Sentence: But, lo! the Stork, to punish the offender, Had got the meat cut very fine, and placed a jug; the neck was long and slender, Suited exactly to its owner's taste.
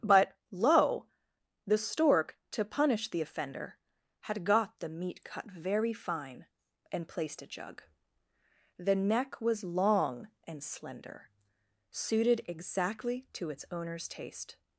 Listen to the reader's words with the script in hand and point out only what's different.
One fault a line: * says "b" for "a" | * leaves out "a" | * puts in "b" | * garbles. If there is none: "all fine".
all fine